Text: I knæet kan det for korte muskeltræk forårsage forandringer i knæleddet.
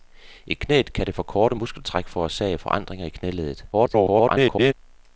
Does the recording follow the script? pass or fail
fail